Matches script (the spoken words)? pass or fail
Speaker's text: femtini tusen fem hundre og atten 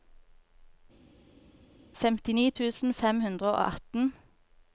pass